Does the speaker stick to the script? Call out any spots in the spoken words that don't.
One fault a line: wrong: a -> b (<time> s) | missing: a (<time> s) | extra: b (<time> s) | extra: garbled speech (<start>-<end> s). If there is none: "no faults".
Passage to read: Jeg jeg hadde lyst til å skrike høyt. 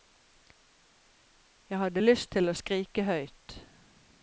missing: jeg (1.8 s)